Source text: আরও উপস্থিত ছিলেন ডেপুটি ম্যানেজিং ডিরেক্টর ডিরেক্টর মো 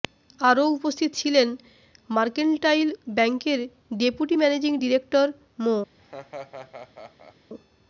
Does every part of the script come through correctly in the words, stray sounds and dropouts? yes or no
no